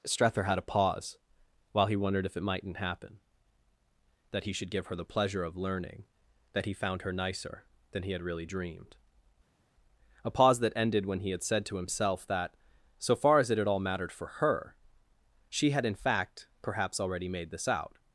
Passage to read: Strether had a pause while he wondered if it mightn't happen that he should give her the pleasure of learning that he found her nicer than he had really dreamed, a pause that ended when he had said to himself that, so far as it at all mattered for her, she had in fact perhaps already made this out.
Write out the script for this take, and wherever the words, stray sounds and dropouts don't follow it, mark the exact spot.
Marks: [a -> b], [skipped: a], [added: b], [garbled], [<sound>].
Strether had a pause while he wondered if it mightn't happen that he should give her the pleasure of learning that he found her nicer than he had really dreamed, a pause that ended when he had said to himself that, so far as it at all mattered for her, she had in fact perhaps already made this out.